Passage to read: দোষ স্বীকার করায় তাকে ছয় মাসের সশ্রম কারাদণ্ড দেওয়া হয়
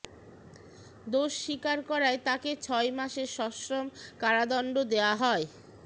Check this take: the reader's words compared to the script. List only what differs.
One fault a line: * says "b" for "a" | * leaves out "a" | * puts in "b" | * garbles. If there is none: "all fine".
all fine